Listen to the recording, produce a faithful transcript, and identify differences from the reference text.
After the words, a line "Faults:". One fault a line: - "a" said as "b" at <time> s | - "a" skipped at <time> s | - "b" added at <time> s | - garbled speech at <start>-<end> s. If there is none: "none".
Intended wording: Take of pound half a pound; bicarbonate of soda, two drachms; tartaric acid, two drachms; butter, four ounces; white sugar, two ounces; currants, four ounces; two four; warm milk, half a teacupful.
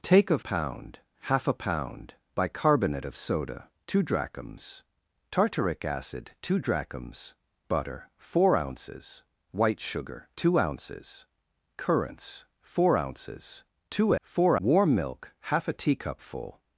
Take of pound half a pound; bicarbonate of soda, two drachms; tartaric acid, two drachms; butter, four ounces; white sugar, two ounces; currants, four ounces; two four; warm milk, half a teacupful.
Faults:
none